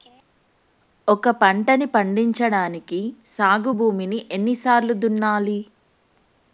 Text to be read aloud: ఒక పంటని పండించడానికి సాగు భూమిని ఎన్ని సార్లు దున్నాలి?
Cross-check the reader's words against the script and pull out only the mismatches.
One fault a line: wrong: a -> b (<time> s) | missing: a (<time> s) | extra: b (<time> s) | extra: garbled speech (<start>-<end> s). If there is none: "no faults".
no faults